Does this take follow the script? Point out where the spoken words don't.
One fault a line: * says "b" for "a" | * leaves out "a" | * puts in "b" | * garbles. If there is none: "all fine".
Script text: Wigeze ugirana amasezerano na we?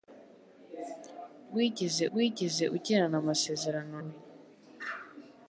* puts in "wigeze"
* leaves out "na"